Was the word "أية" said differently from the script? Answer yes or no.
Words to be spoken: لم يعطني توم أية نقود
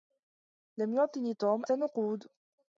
yes